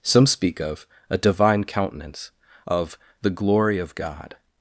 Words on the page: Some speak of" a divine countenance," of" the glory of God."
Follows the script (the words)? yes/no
yes